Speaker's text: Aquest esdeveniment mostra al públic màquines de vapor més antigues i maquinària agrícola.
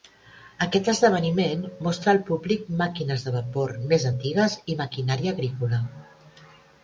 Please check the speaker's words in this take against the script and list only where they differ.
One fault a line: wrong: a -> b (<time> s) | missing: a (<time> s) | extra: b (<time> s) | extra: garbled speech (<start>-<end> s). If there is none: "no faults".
no faults